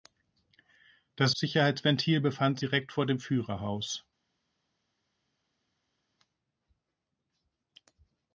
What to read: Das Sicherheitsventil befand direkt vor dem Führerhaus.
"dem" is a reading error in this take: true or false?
false